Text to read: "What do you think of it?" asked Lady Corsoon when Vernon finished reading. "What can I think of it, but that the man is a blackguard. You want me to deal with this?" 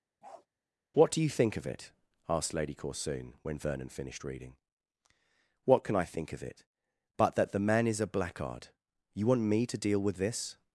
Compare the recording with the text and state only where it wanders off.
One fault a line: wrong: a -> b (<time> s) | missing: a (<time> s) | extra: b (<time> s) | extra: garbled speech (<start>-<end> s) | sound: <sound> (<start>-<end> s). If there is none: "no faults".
sound: bark (0.2-0.5 s)